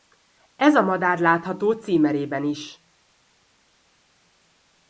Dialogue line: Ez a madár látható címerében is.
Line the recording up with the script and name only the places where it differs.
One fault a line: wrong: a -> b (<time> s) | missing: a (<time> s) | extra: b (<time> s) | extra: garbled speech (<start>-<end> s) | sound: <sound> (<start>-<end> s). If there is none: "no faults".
no faults